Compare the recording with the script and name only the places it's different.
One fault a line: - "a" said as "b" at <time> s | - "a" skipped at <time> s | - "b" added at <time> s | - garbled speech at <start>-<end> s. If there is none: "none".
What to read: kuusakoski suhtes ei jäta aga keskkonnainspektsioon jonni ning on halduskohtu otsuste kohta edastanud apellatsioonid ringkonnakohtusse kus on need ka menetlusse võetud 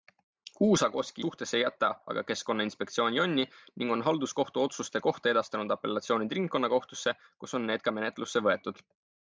none